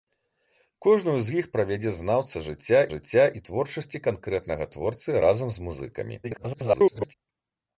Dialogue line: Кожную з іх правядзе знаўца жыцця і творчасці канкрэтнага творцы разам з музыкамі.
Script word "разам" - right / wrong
right